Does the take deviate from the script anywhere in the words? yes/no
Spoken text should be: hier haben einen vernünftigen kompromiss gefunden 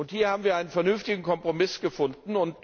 yes